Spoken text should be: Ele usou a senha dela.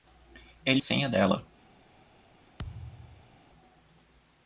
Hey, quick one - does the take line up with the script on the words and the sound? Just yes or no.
no